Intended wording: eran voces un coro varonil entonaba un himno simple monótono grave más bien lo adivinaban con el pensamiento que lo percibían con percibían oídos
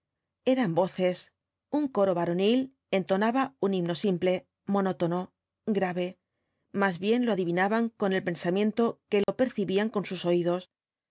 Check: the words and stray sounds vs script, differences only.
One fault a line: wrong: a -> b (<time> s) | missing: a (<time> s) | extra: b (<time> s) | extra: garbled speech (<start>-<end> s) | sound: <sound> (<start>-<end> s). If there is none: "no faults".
sound: dropout (9.2-9.3 s)
wrong: percibían -> sus (10.1 s)